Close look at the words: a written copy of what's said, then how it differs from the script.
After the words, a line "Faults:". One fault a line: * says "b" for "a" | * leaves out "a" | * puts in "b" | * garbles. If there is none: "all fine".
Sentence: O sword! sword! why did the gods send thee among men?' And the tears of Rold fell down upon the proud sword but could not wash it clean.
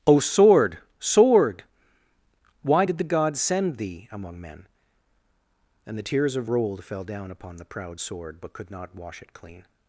O sword! sword! why did the gods send thee among men?' And the tears of Rold fell down upon the proud sword but could not wash it clean.
Faults:
all fine